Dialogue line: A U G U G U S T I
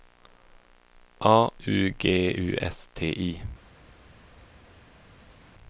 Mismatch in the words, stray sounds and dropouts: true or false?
true